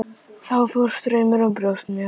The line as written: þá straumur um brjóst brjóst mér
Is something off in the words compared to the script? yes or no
yes